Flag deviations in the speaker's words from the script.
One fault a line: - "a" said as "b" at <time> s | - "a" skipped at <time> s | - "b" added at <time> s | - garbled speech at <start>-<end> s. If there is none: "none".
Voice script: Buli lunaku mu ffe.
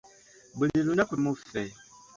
none